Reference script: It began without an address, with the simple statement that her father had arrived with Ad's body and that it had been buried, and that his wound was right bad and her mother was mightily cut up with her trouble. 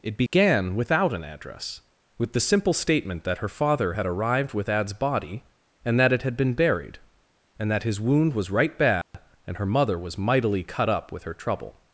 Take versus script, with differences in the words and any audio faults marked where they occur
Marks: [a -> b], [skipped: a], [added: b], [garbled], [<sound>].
It began [dropout] without an address, with the simple statement that her father had arrived with Ad's body and that it had been buried, and that his wound was right bad [dropout] and her mother was mightily cut up with her trouble.